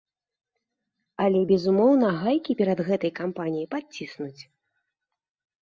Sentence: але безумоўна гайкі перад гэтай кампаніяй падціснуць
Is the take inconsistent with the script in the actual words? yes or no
no